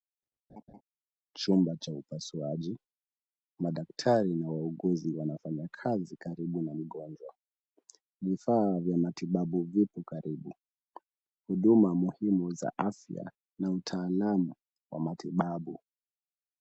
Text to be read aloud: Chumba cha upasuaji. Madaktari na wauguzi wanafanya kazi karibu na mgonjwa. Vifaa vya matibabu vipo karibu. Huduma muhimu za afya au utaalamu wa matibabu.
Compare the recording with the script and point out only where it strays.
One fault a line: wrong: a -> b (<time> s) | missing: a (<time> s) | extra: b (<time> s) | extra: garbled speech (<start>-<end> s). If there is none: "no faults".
wrong: au -> na (13.6 s)